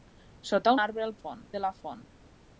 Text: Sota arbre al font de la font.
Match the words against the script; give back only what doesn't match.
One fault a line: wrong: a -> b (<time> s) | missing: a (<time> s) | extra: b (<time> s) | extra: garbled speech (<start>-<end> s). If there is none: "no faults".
no faults